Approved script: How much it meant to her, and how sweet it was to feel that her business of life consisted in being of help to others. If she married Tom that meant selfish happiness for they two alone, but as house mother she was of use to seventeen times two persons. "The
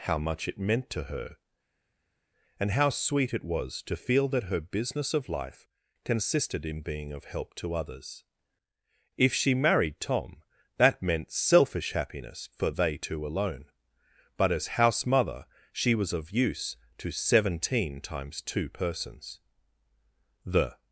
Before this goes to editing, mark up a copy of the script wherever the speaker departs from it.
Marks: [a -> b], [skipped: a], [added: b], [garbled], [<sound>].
How much it meant to her, and how sweet it was to feel that her business of life consisted in being of help to others. If she married Tom that meant selfish happiness for they two alone, but as house mother she was of use to seventeen times two persons. "The